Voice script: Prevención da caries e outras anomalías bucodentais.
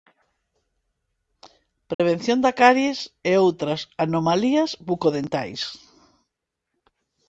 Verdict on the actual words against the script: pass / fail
pass